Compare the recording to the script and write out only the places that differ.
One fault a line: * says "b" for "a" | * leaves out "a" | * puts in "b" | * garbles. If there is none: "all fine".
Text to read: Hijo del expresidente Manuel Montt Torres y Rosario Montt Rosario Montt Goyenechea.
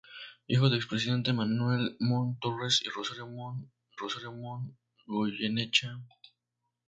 all fine